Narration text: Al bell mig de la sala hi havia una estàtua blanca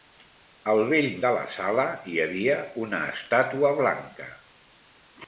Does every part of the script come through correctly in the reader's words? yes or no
no